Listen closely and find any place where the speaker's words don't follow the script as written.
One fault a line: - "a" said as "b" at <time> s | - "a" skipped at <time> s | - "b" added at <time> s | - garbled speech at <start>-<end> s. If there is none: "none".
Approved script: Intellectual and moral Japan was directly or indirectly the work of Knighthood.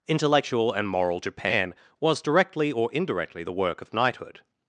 none